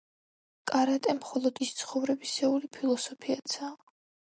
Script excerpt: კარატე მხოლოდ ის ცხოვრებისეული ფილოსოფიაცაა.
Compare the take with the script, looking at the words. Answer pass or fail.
pass